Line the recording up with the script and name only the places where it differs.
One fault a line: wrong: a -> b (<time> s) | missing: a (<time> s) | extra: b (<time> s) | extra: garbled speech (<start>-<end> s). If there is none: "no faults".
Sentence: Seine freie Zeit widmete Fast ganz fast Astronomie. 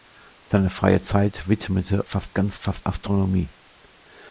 no faults